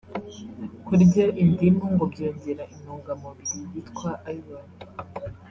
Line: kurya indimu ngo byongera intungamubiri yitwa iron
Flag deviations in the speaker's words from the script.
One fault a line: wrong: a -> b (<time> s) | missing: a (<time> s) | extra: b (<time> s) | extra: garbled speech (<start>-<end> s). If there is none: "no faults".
no faults